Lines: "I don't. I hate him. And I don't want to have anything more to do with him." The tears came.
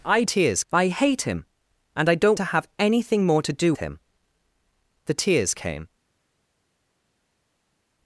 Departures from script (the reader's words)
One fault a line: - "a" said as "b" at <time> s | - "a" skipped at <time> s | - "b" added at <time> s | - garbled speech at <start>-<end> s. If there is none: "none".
- "don't" said as "tears" at 0.2 s
- "want" skipped at 2.4 s
- "with" skipped at 3.7 s